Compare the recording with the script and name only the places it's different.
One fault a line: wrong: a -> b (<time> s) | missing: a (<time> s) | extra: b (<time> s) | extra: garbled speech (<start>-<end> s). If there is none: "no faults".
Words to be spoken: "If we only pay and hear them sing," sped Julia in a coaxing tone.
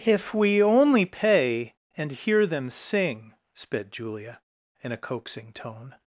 no faults